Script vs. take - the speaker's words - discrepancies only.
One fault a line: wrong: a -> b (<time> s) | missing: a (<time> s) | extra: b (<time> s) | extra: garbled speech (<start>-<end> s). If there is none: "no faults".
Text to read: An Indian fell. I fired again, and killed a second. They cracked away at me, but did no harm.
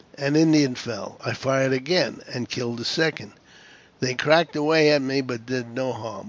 no faults